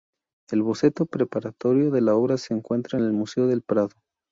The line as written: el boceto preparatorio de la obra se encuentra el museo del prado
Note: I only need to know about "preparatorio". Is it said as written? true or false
true